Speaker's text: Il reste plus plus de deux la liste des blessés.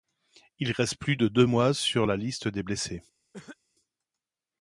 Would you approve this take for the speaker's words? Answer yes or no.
no